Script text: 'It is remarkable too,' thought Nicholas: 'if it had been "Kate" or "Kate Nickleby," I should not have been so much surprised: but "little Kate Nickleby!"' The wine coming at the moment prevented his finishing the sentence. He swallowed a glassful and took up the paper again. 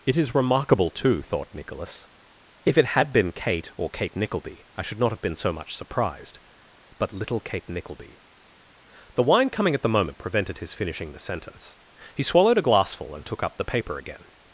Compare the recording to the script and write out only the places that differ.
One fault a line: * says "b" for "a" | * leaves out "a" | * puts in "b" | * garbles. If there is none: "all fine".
all fine